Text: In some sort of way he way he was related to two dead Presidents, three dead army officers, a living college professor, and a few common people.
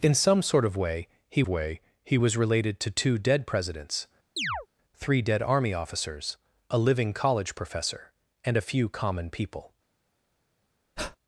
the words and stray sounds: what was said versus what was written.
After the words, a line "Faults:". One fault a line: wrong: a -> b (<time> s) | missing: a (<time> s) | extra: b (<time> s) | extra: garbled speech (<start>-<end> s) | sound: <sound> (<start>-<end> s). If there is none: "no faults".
In some sort of way he way he was related to two dead Presidents, three dead army officers, a living college professor, and a few common people.
Faults:
sound: chirp (4.4-4.7 s)
sound: breath (11.0-11.2 s)